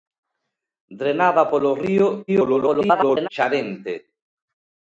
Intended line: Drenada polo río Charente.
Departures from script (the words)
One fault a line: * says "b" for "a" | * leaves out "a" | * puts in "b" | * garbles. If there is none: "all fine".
* garbles